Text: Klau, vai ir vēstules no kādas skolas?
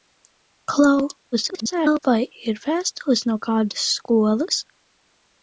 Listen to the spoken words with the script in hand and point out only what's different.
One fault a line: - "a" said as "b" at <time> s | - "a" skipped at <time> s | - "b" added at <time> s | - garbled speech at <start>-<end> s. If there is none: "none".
- garbled speech at 1.3-2.0 s